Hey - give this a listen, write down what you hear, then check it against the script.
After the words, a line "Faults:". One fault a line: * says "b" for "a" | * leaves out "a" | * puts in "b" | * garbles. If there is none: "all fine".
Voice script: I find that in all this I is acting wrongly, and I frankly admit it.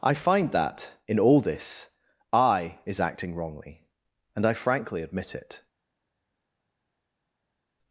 I find that in all this I is acting wrongly, and I frankly admit it.
Faults:
all fine